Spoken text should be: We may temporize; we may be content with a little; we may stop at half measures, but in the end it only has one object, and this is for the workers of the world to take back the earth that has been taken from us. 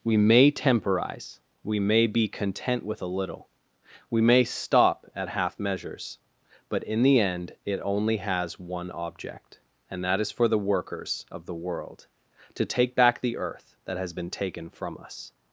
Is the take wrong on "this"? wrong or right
wrong